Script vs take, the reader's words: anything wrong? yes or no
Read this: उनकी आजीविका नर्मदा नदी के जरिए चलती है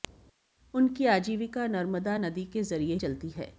no